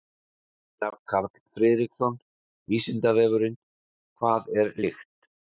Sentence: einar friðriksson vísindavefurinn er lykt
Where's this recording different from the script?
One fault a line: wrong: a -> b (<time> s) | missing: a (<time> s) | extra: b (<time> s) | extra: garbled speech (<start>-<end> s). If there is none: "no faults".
extra: karl (1.1 s)
extra: hvað (4.2 s)